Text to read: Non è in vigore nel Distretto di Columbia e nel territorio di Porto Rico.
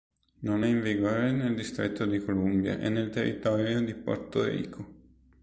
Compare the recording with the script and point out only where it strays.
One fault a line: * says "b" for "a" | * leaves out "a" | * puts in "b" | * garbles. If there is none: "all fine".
all fine